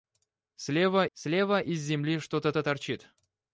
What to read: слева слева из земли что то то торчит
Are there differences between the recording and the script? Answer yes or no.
no